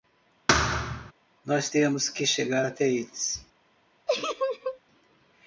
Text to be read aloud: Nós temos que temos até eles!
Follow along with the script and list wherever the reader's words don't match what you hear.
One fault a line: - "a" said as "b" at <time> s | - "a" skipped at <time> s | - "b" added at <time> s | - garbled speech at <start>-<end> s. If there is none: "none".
- "temos" said as "chegar" at 2.2 s